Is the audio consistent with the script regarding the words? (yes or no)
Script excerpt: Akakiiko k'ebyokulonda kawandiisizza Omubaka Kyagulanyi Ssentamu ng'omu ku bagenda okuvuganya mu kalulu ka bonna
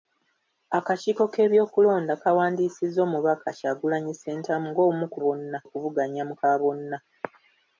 no